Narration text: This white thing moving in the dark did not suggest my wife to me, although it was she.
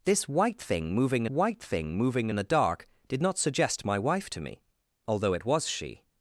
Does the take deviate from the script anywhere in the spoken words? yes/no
yes